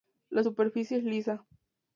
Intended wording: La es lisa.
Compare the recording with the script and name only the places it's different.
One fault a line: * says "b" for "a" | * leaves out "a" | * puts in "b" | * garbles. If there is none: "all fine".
* puts in "superficie"